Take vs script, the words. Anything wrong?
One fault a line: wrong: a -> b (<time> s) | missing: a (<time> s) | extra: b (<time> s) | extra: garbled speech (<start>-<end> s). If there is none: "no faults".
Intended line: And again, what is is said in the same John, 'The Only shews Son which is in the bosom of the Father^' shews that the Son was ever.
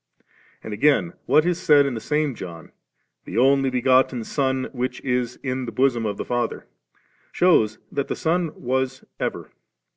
missing: is (1.6 s)
wrong: shews -> begotten (3.7 s)